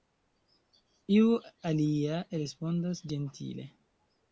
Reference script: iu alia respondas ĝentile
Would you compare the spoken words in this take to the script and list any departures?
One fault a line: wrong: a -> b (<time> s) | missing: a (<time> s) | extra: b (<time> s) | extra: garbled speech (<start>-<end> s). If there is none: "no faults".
no faults